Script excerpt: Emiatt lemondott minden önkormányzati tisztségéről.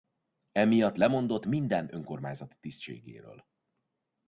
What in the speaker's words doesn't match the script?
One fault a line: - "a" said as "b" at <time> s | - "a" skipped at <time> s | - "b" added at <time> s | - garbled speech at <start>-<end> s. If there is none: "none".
none